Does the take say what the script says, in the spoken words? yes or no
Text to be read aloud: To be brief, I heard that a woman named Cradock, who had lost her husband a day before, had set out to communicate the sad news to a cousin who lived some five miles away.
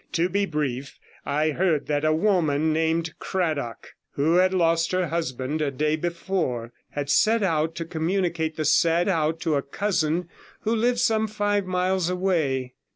no